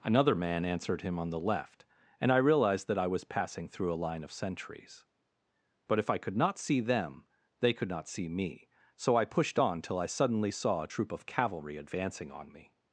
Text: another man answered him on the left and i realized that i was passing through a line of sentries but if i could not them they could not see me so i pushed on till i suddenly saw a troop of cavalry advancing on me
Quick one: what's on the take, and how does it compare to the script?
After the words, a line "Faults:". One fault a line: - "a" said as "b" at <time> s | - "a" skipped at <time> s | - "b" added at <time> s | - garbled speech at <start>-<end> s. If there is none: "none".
another man answered him on the left and i realized that i was passing through a line of sentries but if i could not see them they could not see me so i pushed on till i suddenly saw a troop of cavalry advancing on me
Faults:
- "see" added at 6.6 s